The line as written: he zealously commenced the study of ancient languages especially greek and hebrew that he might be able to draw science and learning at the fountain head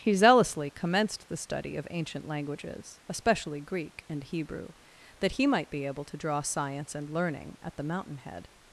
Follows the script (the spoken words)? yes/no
no